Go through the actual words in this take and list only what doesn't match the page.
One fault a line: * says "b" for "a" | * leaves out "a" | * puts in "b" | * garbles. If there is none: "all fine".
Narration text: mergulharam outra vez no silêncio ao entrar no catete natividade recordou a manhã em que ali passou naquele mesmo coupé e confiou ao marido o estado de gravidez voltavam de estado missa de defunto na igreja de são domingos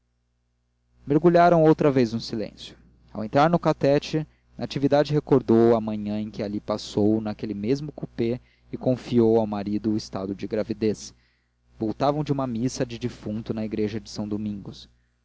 * says "uma" for "estado"